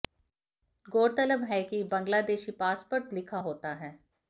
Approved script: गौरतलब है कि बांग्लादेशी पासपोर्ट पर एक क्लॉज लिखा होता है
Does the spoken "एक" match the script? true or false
false